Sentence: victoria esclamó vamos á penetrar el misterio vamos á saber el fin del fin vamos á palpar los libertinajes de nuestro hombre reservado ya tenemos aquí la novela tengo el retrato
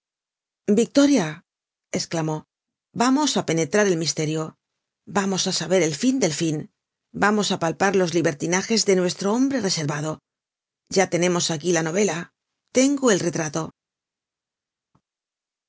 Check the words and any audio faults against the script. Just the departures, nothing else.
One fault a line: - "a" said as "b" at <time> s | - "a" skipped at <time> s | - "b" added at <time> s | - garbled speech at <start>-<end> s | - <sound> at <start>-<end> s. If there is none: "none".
none